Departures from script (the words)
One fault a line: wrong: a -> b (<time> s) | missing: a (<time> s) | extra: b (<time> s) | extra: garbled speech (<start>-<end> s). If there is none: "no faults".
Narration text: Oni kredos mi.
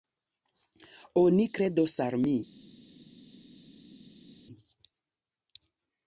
extra: al (2.0 s)